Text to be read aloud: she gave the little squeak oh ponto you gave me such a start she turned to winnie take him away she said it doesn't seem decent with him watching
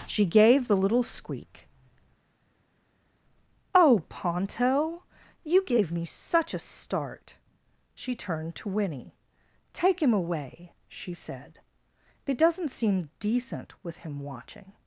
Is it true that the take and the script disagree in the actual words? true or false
false